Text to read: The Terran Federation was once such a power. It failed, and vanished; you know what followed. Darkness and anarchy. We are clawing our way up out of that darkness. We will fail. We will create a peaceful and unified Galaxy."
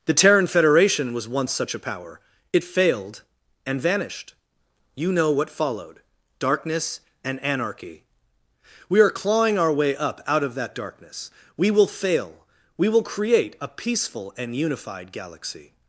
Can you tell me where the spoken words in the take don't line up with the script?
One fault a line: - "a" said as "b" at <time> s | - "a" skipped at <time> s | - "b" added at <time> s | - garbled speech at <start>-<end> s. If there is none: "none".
none